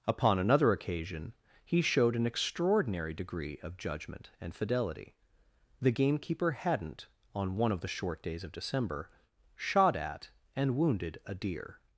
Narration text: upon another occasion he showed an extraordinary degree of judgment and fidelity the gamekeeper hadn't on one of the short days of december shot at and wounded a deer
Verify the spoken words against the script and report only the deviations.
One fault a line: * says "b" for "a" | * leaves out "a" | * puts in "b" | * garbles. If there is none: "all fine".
all fine